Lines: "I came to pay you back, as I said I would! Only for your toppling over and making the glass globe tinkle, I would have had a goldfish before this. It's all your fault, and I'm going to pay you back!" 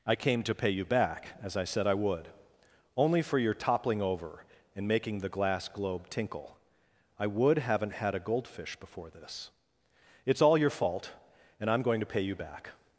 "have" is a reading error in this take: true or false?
true